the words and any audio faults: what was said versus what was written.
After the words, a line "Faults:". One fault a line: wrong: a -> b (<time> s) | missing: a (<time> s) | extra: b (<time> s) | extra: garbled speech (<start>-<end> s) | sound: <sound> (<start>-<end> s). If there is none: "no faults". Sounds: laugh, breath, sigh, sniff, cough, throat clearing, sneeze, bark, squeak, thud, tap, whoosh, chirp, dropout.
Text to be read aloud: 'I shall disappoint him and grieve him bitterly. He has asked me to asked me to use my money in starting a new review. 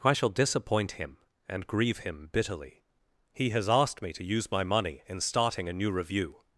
'I shall disappoint him and grieve him bitterly. He has asked me to use my money in starting a new review.
Faults:
missing: asked me to (4.2 s)